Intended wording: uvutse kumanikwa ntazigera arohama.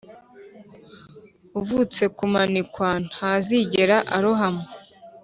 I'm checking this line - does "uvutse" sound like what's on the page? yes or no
yes